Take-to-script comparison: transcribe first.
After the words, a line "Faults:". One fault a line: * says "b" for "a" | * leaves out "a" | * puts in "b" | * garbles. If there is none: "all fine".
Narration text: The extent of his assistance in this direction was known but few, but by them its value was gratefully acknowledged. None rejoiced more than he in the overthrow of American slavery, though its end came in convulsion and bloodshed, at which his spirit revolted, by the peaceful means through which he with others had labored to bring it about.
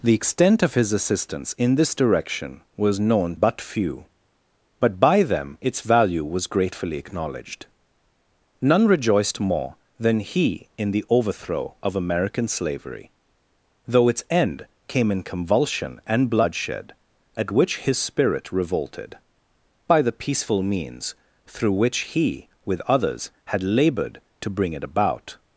The extent of his assistance in this direction was known but few, but by them its value was gratefully acknowledged. None rejoiced more than he in the overthrow of American slavery, though its end came in convulsion and bloodshed, at which his spirit revolted, by the peaceful means through which he with others had labored to bring it about.
Faults:
all fine